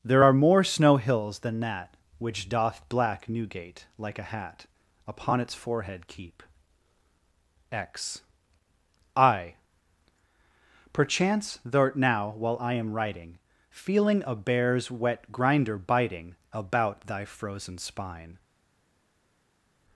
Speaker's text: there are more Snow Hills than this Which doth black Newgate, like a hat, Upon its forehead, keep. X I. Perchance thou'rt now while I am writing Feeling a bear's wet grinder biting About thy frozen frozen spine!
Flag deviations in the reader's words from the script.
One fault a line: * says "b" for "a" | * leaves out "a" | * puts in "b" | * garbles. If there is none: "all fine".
* says "that" for "this"
* leaves out "frozen"